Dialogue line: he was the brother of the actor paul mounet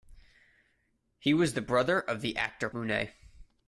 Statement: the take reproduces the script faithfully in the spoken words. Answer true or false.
false